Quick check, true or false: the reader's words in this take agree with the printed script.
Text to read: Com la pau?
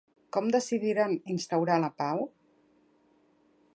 false